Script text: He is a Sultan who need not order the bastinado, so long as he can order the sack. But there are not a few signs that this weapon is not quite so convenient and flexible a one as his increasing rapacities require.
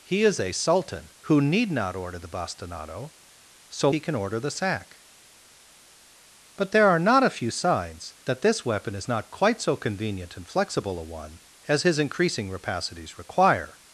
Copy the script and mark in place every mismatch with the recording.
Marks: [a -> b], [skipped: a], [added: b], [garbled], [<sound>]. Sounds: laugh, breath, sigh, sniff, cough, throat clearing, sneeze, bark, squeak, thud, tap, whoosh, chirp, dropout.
He is a Sultan who need not order the bastinado, so [skipped: long as] he can order the sack. But there are not a few signs that this weapon is not quite so convenient and flexible a one as his increasing rapacities require.